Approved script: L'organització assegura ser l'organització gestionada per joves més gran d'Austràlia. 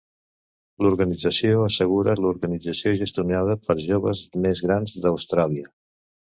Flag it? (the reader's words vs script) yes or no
yes